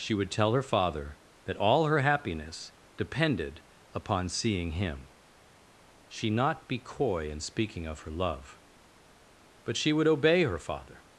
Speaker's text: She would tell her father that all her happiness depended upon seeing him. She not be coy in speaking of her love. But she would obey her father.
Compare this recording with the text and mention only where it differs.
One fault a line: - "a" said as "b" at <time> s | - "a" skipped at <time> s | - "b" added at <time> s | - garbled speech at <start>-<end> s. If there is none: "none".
none